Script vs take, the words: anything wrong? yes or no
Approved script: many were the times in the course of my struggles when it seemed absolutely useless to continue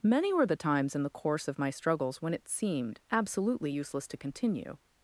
no